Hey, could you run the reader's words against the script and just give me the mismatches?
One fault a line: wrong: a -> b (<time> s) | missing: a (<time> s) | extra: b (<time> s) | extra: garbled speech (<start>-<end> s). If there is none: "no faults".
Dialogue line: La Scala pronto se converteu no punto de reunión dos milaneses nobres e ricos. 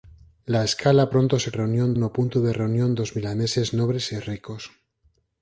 wrong: converteu -> reunión (1.6 s)